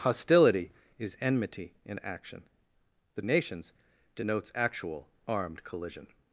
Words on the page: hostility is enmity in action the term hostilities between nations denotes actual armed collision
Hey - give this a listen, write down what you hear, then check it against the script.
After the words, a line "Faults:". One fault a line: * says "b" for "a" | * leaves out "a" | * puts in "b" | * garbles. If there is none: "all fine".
hostility is enmity in action the nations denotes actual armed collision
Faults:
* leaves out "term hostilities between"